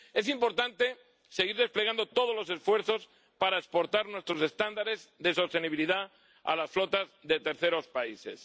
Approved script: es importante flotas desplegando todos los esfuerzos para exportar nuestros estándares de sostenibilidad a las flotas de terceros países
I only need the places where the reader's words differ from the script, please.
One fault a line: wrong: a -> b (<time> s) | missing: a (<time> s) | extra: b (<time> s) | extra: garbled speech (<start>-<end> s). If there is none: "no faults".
wrong: flotas -> seguir (1.3 s)